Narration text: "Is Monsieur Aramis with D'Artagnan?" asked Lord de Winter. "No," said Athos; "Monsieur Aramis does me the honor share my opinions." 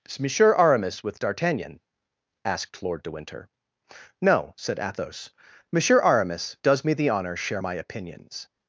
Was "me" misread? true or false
false